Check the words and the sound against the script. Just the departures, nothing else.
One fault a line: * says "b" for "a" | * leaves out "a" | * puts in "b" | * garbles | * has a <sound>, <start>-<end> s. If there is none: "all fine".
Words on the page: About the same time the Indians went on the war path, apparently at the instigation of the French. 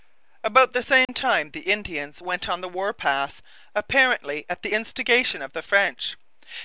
* has a dropout, 1.0-1.1 s